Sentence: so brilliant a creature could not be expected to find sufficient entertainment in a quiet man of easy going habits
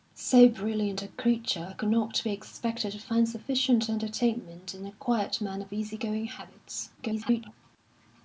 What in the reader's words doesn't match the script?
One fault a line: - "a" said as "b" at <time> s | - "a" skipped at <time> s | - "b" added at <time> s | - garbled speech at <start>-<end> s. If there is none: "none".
- garbled speech at 7.0-7.5 s